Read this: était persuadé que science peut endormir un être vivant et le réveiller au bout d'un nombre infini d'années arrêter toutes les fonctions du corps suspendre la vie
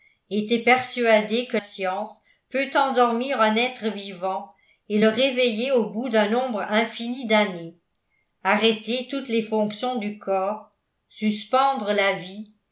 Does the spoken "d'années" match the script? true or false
true